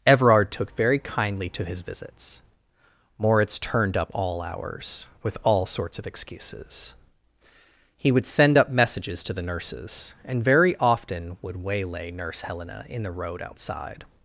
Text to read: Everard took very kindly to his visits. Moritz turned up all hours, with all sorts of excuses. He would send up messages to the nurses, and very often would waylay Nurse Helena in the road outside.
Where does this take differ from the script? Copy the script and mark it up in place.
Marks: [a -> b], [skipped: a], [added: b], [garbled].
Everard took very kindly to his visits. Moritz turned up all hours, with all sorts of excuses. He would send up messages to the nurses, and very often would waylay Nurse Helena in the road outside.